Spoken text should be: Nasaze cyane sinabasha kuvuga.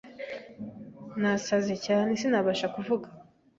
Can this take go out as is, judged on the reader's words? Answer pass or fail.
pass